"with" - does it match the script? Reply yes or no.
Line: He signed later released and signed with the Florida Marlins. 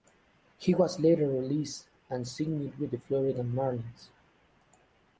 yes